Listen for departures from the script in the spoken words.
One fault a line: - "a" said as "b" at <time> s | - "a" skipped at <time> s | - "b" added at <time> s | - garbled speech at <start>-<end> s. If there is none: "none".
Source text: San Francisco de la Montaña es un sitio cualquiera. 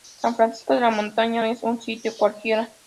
none